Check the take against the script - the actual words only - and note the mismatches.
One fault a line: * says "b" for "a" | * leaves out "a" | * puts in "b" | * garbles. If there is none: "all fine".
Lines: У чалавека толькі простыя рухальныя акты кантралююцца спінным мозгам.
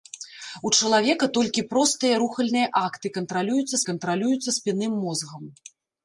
* puts in "кантралююцца"